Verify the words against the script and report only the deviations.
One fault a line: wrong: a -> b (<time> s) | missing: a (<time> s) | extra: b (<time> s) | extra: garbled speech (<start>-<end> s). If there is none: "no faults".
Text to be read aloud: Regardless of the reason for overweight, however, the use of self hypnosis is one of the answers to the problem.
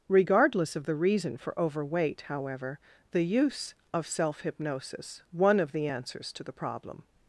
missing: is (5.2 s)